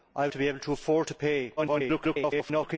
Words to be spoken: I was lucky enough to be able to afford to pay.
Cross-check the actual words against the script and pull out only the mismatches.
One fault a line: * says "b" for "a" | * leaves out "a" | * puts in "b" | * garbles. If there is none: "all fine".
* leaves out "was lucky enough"
* garbles